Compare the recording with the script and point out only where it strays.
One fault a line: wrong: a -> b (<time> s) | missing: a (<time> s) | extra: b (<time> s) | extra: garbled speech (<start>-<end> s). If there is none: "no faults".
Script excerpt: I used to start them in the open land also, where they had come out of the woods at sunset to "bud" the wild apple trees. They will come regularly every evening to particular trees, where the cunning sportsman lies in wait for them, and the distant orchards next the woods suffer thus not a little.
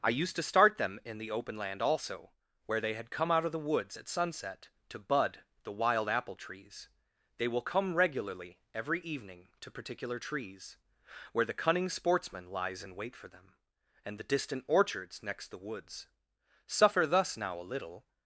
wrong: not -> now (17.3 s)